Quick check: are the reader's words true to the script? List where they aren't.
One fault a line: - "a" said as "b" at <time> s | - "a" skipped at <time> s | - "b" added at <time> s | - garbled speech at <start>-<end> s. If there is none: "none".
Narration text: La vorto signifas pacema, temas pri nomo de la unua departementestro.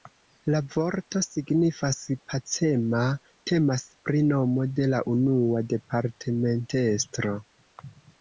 none